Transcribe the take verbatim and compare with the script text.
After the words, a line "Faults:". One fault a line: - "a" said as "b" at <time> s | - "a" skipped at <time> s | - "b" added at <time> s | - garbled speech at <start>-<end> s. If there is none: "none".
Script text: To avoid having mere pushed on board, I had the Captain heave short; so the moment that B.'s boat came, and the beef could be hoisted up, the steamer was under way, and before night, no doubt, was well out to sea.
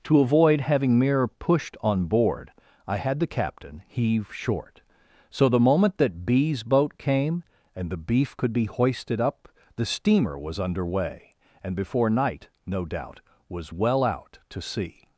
To avoid having mere pushed on board, I had the Captain heave short; so the moment that B.'s boat came, and the beef could be hoisted up, the steamer was under way, and before night, no doubt, was well out to sea.
Faults:
none